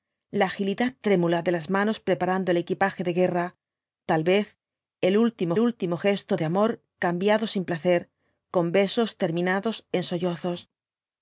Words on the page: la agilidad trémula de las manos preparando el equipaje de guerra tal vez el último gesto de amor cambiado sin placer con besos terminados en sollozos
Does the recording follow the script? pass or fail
fail